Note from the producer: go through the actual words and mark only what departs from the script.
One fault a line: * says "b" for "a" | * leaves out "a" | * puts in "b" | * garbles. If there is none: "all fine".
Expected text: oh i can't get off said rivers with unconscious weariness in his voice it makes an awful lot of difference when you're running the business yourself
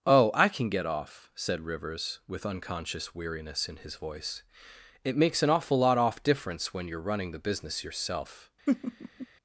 * says "can" for "can't"
* says "off" for "of"